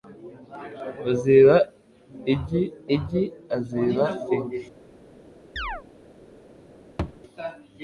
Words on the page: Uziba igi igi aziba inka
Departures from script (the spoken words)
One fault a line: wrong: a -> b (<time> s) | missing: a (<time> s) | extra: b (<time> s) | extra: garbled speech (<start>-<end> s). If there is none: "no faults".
no faults